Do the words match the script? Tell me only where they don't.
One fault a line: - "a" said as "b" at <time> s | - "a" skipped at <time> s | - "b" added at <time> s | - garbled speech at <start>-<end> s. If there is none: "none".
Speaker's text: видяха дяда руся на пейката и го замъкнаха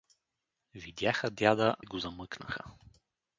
- "руся на пейката" skipped at 1.8 s